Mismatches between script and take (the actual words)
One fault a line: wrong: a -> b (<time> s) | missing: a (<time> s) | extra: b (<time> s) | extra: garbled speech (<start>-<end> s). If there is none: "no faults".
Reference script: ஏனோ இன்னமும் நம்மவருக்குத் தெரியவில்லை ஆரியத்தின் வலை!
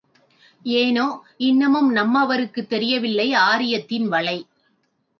no faults